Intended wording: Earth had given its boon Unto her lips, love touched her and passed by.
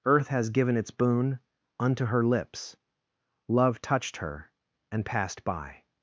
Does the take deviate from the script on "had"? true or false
true